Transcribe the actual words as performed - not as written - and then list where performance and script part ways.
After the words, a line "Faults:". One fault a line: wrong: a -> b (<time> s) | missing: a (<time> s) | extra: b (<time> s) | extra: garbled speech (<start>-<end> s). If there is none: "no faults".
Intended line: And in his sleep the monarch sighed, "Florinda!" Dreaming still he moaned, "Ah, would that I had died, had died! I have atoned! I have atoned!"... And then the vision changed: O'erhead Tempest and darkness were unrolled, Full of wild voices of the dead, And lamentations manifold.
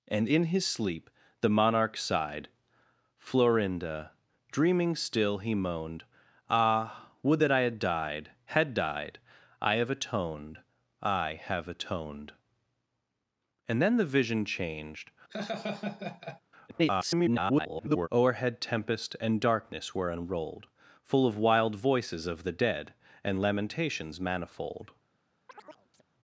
And in his sleep the monarch sighed, "Florinda!" Dreaming still he moaned, "Ah, would that I had died, had died! I have atoned! I have atoned!"... And then the vision changed: [garbled] O'erhead Tempest and darkness were unrolled, Full of wild voices of the dead, And lamentations manifold.
Faults:
extra: garbled speech (16.7-18.1 s)